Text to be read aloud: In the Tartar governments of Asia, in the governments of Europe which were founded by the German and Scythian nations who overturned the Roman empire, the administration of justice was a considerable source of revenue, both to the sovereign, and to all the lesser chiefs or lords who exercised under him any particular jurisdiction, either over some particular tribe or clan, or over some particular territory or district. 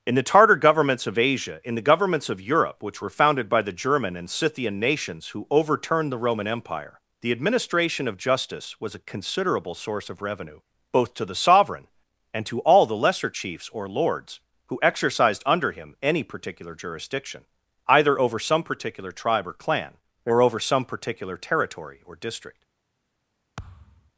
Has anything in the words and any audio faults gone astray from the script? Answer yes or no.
yes